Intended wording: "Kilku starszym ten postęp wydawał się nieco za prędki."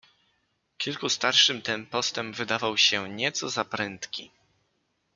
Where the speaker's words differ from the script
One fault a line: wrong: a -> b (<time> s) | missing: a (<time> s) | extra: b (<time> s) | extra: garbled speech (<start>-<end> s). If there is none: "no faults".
no faults